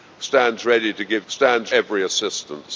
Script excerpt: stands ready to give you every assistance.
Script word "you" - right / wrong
wrong